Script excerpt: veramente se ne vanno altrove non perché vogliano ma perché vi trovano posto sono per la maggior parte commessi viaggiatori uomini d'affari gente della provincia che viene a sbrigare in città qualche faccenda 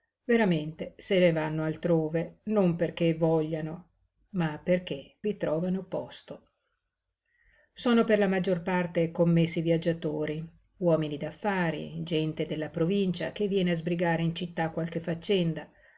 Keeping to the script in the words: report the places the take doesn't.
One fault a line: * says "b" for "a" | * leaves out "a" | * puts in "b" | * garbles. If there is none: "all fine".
all fine